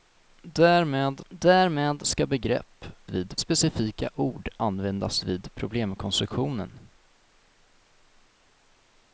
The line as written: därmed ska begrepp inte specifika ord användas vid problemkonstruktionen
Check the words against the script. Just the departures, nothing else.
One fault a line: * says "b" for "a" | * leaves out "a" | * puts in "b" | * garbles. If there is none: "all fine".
* puts in "därmed"
* says "vid" for "inte"